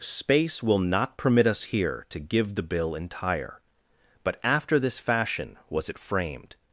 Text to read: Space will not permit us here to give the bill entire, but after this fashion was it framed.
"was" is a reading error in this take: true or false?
false